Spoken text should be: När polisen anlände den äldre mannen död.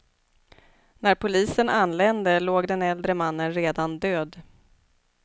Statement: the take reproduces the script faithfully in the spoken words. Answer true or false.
false